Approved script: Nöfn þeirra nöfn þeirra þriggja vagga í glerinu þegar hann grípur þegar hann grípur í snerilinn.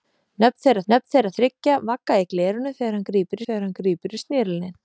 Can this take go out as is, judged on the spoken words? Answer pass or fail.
pass